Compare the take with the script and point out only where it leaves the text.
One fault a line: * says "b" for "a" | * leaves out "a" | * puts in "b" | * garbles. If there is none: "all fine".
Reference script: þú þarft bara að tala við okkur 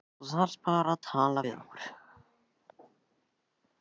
all fine